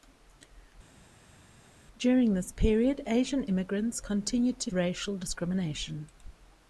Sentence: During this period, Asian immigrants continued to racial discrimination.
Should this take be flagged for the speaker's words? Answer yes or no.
no